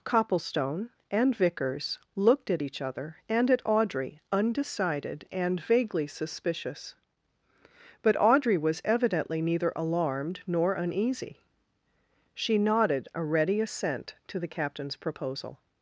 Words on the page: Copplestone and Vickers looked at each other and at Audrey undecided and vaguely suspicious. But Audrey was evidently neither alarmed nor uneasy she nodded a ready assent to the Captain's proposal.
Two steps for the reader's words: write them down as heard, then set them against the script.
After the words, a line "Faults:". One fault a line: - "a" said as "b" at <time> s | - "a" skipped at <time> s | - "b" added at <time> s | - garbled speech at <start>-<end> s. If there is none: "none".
Copplestone and Vickers looked at each other and at Audrey undecided and vaguely suspicious. But Audrey was evidently neither alarmed nor uneasy she nodded a ready assent to the Captain's proposal.
Faults:
none